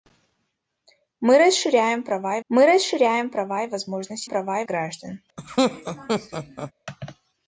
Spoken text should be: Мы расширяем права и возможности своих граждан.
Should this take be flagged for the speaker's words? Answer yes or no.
yes